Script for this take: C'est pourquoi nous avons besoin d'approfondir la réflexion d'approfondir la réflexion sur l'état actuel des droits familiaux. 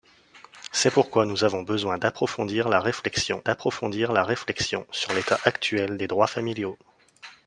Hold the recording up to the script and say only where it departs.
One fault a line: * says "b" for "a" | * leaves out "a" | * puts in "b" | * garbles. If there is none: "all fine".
all fine